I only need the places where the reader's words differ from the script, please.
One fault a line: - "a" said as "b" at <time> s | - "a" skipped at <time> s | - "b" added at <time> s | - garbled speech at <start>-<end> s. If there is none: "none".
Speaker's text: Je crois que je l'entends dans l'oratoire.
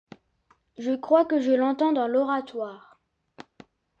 none